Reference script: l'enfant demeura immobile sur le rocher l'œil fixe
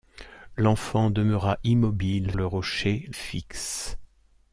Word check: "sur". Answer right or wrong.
wrong